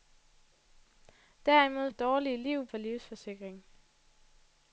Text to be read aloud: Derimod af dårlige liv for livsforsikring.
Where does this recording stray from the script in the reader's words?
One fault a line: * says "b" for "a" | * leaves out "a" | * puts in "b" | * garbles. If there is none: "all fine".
all fine